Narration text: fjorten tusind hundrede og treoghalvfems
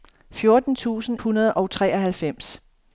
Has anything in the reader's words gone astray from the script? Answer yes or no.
no